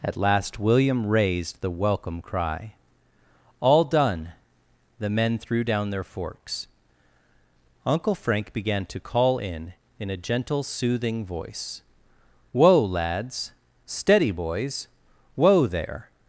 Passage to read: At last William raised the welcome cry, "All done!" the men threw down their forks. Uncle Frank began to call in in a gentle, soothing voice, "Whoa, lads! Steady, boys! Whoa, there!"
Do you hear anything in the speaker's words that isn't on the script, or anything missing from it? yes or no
no